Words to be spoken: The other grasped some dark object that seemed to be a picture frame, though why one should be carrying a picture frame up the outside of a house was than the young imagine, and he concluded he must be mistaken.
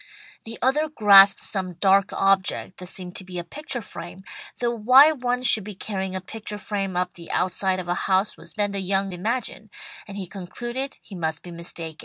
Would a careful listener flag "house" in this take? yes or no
no